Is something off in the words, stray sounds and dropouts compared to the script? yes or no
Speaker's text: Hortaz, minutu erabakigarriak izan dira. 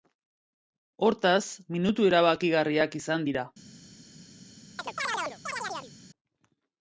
yes